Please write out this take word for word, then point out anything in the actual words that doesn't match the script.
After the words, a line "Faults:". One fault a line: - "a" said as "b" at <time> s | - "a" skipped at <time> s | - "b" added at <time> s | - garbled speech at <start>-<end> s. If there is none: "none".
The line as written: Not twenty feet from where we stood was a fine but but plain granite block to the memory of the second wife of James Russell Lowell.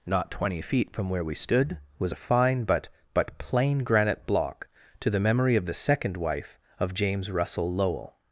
Not twenty feet from where we stood was a fine but but plain granite block to the memory of the second wife of James Russell Lowell.
Faults:
none